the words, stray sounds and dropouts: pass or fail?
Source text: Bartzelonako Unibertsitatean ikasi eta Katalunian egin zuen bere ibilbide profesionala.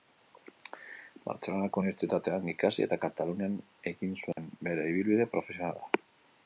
fail